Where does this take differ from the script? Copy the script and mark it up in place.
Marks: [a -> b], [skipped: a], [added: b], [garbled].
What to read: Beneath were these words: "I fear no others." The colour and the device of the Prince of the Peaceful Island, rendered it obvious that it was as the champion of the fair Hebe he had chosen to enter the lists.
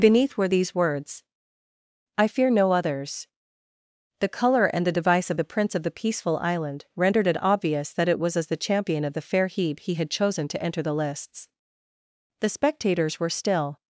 Beneath were these words: "I fear no others." The colour and the device of the Prince of the Peaceful Island, rendered it obvious that it was as the champion of the fair Hebe he had chosen to enter the lists. [added: The spectators were still]